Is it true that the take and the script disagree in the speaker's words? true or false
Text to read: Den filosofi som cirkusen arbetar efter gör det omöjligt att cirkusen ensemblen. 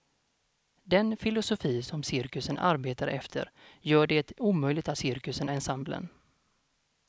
false